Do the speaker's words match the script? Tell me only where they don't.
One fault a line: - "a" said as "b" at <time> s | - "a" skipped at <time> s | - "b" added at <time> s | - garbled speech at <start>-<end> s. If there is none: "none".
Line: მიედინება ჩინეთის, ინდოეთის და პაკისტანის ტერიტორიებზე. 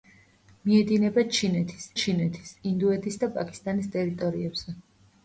- "ჩინეთის" added at 2.0 s